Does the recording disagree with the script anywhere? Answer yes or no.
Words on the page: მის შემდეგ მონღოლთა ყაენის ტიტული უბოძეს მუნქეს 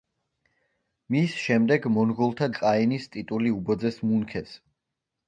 no